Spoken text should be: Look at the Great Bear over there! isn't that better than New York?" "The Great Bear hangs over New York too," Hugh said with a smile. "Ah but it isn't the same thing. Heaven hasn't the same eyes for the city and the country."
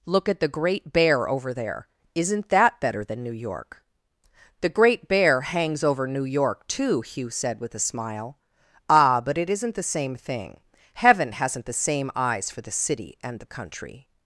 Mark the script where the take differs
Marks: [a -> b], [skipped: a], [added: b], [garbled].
Look at the Great Bear over there! isn't that better than New York?" "The Great Bear hangs over New York too," Hugh said with a smile. "Ah but it isn't the same thing. Heaven hasn't the same eyes for the city and the country."